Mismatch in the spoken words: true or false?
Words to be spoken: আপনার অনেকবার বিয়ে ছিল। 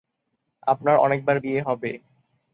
true